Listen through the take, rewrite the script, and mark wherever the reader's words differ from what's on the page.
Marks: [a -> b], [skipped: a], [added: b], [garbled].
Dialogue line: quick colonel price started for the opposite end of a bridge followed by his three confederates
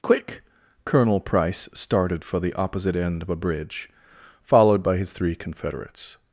quick colonel price started for the opposite end of a bridge followed by his three confederates